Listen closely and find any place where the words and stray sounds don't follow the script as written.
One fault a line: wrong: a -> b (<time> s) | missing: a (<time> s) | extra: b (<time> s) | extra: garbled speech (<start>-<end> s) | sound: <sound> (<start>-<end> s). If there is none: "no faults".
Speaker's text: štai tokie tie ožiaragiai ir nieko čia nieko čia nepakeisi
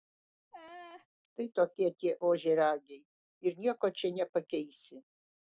sound: laugh (0.5-1.1 s)
missing: nieko čia (4.1 s)